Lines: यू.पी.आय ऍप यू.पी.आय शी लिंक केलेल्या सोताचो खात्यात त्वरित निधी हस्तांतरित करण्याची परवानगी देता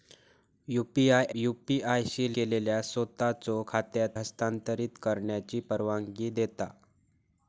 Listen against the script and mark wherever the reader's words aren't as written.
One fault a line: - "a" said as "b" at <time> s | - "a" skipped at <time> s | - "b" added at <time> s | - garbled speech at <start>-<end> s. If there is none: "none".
- "ऍप" skipped at 1.2 s
- "लिंक" skipped at 2.3 s
- "त्वरित निधी" skipped at 4.2 s